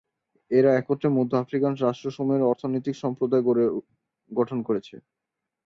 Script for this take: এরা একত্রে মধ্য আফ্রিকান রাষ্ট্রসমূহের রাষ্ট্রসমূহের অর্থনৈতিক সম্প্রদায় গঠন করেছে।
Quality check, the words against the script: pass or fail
fail